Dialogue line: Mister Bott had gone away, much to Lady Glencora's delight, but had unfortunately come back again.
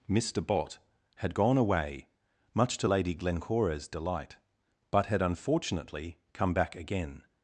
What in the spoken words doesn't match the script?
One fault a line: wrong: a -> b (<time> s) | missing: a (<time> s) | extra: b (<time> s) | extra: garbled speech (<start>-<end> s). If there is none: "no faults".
no faults